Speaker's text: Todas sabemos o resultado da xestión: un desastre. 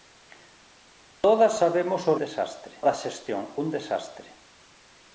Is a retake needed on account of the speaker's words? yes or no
yes